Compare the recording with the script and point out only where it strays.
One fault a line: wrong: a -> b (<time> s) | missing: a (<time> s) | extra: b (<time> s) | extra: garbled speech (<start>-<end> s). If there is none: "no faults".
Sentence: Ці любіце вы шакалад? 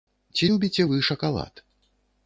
no faults